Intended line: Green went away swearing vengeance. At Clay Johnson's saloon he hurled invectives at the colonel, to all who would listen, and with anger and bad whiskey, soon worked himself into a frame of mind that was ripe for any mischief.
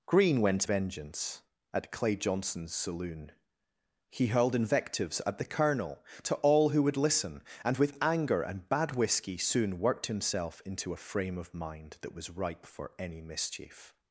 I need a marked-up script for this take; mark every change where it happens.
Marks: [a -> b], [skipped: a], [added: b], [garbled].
Green went [skipped: away swearing] vengeance. At Clay Johnson's saloon he hurled invectives at the colonel, to all who would listen, and with anger and bad whiskey, soon worked himself into a frame of mind that was ripe for any mischief.